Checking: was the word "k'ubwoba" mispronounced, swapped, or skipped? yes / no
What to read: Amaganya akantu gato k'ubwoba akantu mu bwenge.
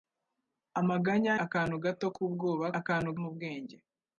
no